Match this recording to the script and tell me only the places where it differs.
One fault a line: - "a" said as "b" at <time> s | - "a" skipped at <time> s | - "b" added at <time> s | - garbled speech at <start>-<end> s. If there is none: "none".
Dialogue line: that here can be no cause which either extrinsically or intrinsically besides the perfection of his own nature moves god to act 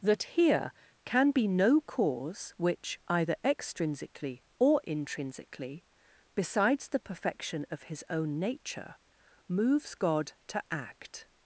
none